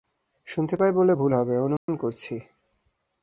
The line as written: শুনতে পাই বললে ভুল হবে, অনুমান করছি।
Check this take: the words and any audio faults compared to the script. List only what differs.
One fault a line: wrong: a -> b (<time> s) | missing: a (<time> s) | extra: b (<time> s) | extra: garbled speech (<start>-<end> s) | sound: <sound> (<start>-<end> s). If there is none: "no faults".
sound: dropout (1.8-1.9 s)